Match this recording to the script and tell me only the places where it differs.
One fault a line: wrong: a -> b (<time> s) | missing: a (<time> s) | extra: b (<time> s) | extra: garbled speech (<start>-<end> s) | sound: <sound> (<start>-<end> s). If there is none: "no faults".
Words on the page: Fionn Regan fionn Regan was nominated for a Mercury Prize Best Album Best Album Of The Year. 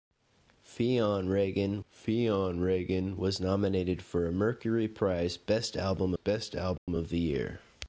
sound: dropout (6.8-6.9 s)